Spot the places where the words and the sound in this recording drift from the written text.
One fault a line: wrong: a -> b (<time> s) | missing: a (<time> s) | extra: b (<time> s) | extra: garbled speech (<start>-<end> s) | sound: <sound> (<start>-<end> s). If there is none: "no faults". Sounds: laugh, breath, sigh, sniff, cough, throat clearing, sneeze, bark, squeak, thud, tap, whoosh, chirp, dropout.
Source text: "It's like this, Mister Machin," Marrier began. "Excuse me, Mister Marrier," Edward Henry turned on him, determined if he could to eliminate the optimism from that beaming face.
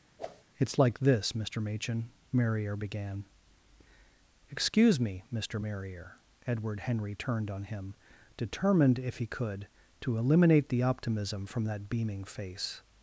sound: whoosh (0.2-0.4 s)